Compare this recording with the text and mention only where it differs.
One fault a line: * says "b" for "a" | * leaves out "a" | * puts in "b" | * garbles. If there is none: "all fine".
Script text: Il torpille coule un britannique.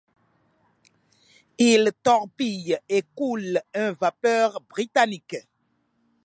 * puts in "et"
* puts in "vapeur"